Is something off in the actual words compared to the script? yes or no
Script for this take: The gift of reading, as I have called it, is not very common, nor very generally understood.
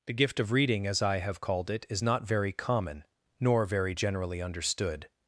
no